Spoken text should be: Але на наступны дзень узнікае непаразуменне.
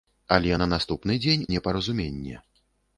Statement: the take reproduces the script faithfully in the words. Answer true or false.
false